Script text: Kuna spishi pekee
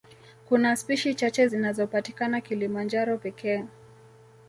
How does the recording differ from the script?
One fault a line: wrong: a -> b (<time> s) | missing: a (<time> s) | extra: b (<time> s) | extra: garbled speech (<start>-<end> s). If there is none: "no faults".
extra: chache zinazopatikana Kilimanjaro (1.1 s)